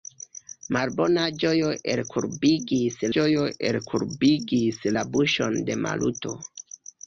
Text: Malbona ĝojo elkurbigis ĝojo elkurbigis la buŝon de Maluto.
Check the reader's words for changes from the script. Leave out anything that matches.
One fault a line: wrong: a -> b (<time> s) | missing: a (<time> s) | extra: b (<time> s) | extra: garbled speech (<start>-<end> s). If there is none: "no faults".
no faults